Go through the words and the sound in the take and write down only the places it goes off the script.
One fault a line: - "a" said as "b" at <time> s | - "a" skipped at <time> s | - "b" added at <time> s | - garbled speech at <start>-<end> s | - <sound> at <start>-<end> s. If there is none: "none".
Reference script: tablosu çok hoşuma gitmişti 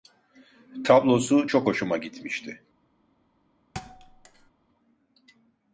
- thud at 3.7-4.5 s